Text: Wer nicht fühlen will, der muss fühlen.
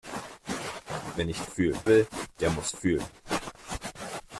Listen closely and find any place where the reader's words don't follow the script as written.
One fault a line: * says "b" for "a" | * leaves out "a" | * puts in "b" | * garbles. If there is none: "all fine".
all fine